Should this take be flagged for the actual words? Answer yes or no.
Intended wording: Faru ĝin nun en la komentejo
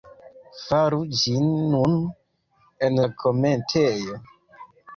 no